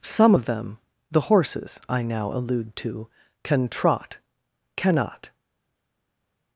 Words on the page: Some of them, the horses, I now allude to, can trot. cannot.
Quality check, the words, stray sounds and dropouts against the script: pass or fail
pass